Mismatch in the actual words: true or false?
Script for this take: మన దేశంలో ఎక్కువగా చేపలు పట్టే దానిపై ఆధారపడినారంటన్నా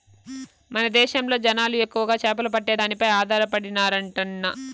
true